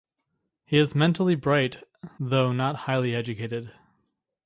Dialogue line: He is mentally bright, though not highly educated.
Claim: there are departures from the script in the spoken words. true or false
false